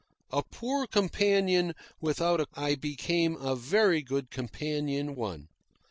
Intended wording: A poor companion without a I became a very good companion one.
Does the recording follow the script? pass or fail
pass